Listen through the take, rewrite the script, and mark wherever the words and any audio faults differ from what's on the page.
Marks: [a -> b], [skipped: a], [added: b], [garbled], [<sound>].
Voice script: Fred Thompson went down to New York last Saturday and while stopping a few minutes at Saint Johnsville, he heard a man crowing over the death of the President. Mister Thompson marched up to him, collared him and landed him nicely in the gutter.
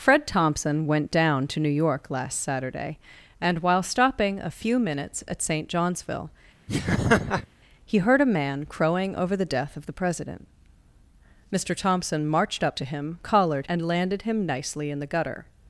Fred Thompson went down to New York last Saturday and while stopping a few minutes at Saint Johnsville, [laugh] he heard a man crowing over the death of the President. Mister Thompson marched up to him, collared [skipped: him] and landed him nicely in the gutter.